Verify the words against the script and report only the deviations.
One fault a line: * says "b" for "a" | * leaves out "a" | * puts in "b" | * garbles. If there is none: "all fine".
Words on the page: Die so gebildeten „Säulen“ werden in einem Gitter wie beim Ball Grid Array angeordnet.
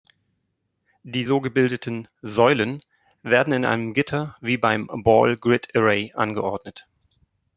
all fine